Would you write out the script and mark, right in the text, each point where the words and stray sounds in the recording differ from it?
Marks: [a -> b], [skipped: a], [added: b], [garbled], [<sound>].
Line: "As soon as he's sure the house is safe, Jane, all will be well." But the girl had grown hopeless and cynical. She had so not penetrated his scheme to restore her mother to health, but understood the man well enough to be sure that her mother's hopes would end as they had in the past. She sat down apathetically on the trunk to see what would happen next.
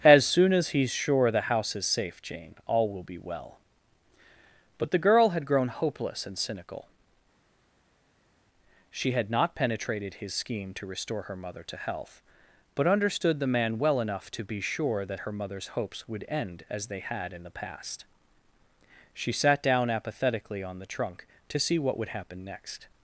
"As soon as he's sure the house is safe, Jane, all will be well." But the girl had grown hopeless and cynical. She had [skipped: so] not penetrated his scheme to restore her mother to health, but understood the man well enough to be sure that her mother's hopes would end as they had in the past. She sat down apathetically on the trunk to see what would happen next.